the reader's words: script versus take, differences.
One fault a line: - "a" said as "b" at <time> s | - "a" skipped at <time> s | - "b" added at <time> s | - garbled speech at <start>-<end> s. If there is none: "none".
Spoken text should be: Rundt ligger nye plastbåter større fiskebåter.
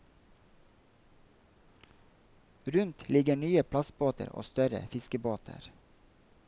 - "og" added at 4.3 s